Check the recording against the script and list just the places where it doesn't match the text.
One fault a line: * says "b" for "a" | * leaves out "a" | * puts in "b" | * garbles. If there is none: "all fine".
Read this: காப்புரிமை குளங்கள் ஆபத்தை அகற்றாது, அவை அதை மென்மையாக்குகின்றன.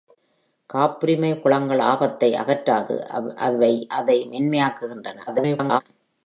* garbles